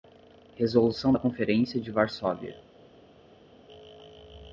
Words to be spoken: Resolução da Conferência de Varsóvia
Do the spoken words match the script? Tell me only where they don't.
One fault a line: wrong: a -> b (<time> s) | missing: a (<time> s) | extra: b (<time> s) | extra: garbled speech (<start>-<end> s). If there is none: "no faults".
no faults